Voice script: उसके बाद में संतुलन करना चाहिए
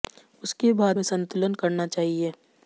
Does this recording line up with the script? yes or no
yes